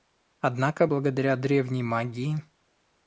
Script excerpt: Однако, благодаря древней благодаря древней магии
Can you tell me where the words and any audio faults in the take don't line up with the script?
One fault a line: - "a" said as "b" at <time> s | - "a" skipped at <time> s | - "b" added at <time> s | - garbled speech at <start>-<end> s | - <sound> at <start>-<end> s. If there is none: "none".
- "благодаря древней" skipped at 1.8 s